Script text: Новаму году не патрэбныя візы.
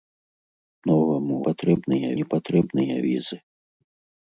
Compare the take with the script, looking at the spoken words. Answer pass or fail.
fail